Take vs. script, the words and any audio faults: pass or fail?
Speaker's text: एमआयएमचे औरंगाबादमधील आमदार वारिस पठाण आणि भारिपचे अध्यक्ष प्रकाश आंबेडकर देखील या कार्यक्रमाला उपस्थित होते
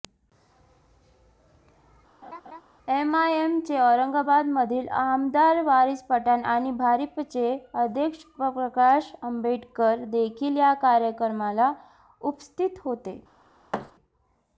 fail